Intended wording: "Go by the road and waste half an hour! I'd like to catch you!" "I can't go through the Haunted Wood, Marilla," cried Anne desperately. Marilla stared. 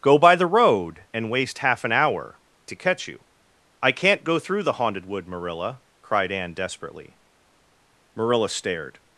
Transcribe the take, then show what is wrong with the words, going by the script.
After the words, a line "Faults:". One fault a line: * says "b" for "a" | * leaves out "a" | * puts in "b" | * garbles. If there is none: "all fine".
"Go by the road and waste half an hour! To catch you!" "I can't go through the Haunted Wood, Marilla," cried Anne desperately. Marilla stared.
Faults:
* leaves out "I'd like"